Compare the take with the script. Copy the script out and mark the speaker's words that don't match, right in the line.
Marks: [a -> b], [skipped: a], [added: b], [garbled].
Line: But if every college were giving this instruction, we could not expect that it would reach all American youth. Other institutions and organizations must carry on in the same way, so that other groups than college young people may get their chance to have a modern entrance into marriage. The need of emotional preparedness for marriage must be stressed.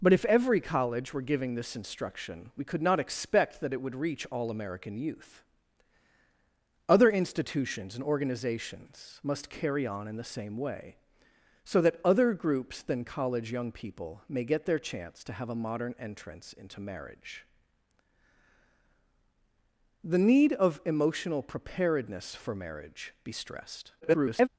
But if every college were giving this instruction, we could not expect that it would reach all American youth. Other institutions and organizations must carry on in the same way, so that other groups than college young people may get their chance to have a modern entrance into marriage. The need of emotional preparedness for marriage [skipped: must] be stressed. [garbled]